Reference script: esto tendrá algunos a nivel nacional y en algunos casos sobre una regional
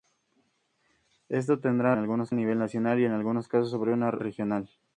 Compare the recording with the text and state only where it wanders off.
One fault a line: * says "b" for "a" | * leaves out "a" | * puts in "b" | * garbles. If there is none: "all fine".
all fine